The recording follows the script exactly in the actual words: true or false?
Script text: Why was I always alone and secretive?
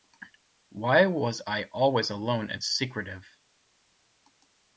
true